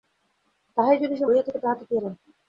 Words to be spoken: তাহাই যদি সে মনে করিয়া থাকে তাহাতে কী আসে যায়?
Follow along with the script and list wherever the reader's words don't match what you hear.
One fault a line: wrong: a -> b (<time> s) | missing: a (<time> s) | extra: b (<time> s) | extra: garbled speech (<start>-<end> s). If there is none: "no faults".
missing: মনে (1.2 s)
missing: আসে (1.9 s)